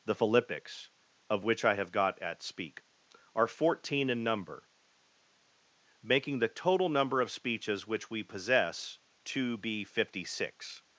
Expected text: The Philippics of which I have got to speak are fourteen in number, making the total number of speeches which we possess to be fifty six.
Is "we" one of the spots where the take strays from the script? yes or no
no